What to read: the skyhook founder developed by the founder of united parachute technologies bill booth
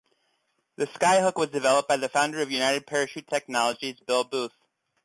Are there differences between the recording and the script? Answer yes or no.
yes